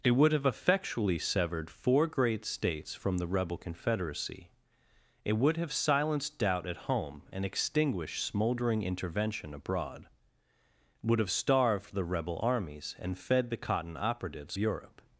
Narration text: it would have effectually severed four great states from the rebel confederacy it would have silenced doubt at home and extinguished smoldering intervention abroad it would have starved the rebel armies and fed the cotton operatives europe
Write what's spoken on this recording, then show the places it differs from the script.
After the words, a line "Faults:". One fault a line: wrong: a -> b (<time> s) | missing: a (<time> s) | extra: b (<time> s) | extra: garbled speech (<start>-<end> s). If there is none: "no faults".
it would have effectually severed four great states from the rebel confederacy it would have silenced doubt at home and extinguished smoldering intervention abroad it would have starved the rebel armies and fed the cotton operatives europe
Faults:
no faults